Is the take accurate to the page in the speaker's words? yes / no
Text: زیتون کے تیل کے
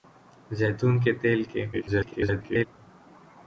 no